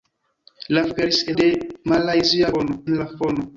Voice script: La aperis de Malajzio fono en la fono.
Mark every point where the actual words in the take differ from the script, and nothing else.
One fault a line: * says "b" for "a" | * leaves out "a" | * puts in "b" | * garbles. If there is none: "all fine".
all fine